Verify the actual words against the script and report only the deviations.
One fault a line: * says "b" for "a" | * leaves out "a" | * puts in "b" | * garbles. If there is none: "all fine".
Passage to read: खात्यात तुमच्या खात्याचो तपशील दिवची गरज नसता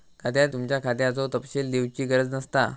all fine